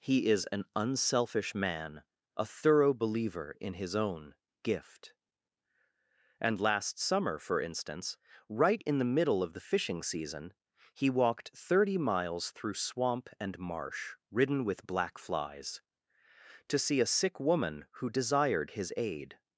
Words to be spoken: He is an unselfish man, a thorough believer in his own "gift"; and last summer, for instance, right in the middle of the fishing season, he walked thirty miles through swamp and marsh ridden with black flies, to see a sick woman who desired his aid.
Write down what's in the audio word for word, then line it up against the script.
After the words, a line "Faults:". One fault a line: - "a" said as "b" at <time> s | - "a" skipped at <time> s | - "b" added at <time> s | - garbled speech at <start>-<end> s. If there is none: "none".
He is an unselfish man, a thorough believer in his own "gift"; and last summer, for instance, right in the middle of the fishing season, he walked thirty miles through swamp and marsh ridden with black flies, to see a sick woman who desired his aid.
Faults:
none